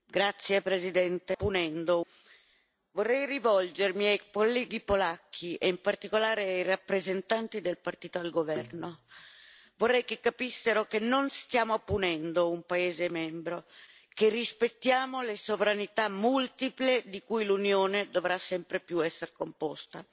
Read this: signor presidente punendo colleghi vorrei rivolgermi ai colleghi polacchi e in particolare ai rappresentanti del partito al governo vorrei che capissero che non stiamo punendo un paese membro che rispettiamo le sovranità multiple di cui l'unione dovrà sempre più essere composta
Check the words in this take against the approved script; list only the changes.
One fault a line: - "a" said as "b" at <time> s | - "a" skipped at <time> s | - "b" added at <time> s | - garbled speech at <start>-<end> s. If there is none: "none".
none